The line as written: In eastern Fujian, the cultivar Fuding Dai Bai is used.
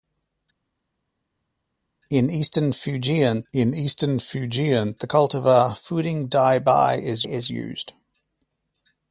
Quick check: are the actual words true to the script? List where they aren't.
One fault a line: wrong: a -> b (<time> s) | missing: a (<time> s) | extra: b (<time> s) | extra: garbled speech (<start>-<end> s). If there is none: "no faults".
extra: in eastern Fujian (3.5 s)
extra: is (7.2 s)